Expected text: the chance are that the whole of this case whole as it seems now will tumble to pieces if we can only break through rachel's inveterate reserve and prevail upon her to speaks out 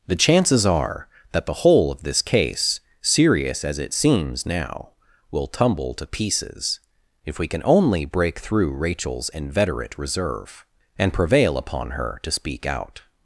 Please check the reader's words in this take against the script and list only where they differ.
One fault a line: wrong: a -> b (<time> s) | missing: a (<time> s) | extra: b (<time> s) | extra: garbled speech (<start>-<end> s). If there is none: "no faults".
wrong: chance -> chances (0.1 s)
wrong: whole -> serious (3.0 s)
wrong: speaks -> speak (12.3 s)